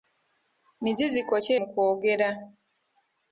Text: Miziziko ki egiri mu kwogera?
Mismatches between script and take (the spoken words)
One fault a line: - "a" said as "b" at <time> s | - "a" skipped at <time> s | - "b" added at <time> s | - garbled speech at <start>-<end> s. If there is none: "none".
- "egiri" skipped at 1.5 s